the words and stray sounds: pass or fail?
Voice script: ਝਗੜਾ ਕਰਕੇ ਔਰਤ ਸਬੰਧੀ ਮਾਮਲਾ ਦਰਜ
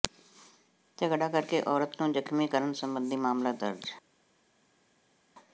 fail